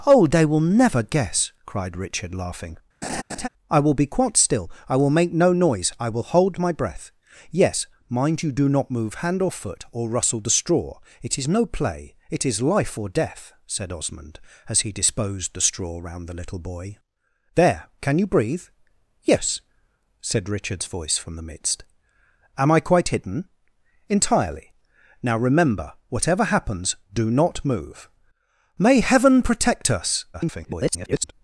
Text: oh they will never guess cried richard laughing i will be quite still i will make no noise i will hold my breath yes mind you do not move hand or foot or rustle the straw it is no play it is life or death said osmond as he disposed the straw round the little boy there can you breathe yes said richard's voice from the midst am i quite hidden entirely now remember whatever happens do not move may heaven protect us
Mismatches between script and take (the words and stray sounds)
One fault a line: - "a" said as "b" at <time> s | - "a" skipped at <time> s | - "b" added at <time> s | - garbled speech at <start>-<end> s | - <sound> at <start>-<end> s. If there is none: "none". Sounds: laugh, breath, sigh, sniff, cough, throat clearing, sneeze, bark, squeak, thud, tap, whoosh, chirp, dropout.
- laugh at 3.0-3.5 s
- garbled speech at 30.3-31.3 s